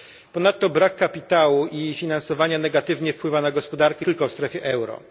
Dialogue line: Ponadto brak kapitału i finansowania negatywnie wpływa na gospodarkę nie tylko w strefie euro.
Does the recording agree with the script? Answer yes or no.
no